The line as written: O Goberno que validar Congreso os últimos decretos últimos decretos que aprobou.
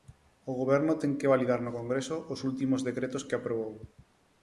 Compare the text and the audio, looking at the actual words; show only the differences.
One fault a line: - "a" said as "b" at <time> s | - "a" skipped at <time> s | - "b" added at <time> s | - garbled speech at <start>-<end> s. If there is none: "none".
- "ten" added at 1.0 s
- "no" added at 1.6 s
- "últimos decretos" skipped at 3.2 s